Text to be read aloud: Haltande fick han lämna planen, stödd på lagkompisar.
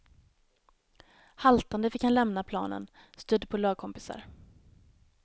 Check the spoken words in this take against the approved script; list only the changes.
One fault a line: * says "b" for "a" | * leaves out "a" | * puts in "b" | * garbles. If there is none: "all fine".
all fine